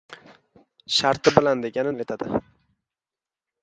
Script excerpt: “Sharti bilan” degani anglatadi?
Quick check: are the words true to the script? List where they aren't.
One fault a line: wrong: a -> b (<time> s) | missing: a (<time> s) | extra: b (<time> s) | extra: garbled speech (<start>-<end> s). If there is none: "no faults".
no faults